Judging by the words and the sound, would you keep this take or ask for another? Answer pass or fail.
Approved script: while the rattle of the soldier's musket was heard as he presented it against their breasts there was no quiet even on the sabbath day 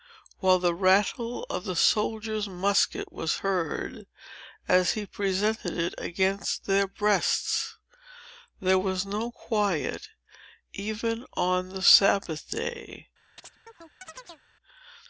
fail